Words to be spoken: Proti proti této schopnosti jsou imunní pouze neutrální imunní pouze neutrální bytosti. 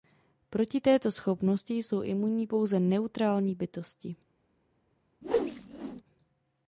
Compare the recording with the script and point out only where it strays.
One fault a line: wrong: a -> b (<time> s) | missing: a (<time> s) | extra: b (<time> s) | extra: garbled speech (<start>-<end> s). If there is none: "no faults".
missing: proti (0.8 s)
missing: imunní pouze neutrální (3.5 s)